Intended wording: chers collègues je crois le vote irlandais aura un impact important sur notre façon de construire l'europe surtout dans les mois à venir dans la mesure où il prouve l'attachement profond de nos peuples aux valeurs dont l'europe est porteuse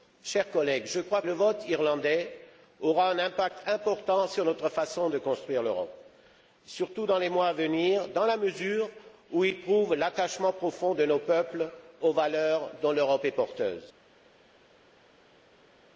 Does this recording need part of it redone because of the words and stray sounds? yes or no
no